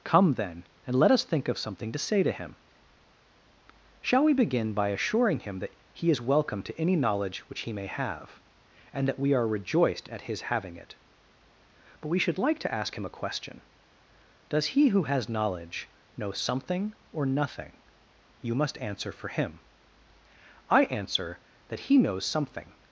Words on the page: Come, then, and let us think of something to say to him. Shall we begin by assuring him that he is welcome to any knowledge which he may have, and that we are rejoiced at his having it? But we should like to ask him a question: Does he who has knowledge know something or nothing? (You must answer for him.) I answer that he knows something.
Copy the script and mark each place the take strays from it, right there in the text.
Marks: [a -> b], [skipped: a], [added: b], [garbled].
Come, then, and let us think of something to say to him. Shall we begin by assuring him that he is welcome to any knowledge which he may have, and that we are rejoiced at his having it? But we should like to ask him a question: Does he who has knowledge know something or nothing? (You must answer for him.) I answer that he knows something.